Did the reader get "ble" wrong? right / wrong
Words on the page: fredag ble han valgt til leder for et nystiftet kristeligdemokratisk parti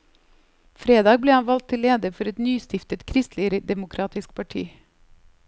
right